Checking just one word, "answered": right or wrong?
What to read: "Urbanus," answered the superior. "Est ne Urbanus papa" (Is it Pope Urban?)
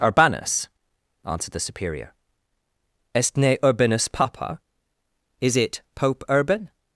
right